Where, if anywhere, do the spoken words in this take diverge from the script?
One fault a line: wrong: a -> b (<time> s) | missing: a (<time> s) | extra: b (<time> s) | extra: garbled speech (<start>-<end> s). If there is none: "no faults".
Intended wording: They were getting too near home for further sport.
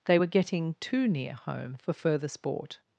no faults